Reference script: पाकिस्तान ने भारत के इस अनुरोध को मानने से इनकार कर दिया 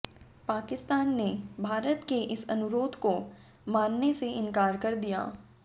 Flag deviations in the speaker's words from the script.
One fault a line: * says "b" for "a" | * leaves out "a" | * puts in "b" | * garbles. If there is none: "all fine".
all fine